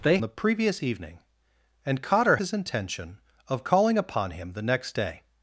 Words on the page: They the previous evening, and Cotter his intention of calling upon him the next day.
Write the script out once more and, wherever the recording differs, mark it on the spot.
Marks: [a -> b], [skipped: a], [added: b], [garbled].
They the previous evening, and Cotter his intention of calling upon him the next day.